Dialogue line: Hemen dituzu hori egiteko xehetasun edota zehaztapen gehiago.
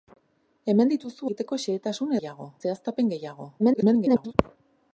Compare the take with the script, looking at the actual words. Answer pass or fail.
fail